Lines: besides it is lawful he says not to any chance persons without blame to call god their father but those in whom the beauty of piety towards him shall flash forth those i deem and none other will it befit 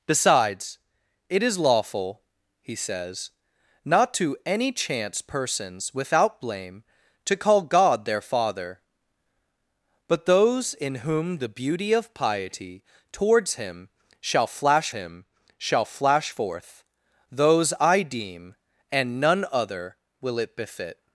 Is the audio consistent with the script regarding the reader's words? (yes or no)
no